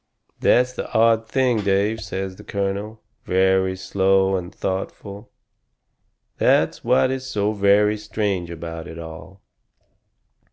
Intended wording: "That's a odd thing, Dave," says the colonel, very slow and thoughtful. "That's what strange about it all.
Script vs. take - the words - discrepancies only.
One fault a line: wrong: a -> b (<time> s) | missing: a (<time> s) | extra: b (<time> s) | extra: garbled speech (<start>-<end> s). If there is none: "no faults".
wrong: a -> the (0.7 s)
extra: is so very (7.1 s)